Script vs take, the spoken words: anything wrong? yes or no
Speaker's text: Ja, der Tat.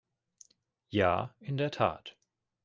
yes